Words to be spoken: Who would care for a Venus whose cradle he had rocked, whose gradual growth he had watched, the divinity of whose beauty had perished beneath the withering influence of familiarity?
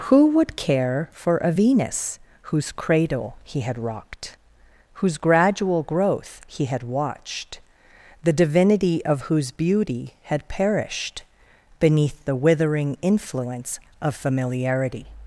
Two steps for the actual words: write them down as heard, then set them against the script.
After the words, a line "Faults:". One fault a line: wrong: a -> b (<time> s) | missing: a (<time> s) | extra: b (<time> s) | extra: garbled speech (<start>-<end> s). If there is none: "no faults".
Who would care for a Venus whose cradle he had rocked, whose gradual growth he had watched, the divinity of whose beauty had perished beneath the withering influence of familiarity?
Faults:
no faults